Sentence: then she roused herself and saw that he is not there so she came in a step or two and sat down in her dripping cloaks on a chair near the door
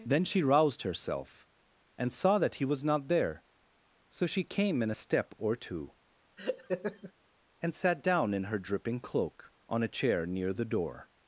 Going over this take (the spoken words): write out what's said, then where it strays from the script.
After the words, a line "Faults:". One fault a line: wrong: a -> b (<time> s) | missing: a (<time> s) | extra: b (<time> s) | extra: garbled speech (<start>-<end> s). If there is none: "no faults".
then she roused herself and saw that he was not there so she came in a step or two and sat down in her dripping cloak on a chair near the door
Faults:
wrong: is -> was (2.6 s)
wrong: cloaks -> cloak (9.0 s)